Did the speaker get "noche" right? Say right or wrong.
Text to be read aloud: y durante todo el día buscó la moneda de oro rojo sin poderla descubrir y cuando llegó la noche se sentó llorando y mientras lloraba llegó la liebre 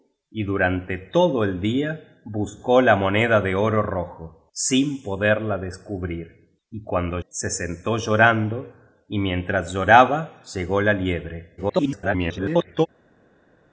wrong